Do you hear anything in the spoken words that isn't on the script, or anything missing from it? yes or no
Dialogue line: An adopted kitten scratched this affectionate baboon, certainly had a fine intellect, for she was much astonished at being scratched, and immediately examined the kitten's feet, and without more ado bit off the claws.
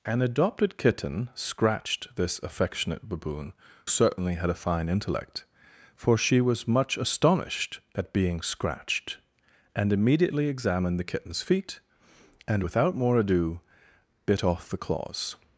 no